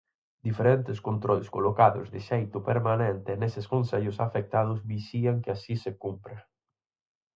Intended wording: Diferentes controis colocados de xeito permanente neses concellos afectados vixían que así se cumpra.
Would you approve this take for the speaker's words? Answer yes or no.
yes